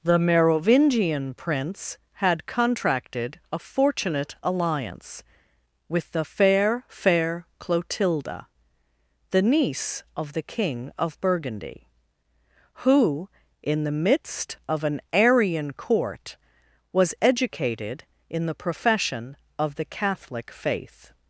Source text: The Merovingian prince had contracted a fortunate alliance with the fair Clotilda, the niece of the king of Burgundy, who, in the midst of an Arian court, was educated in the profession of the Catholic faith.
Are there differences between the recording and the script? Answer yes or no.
yes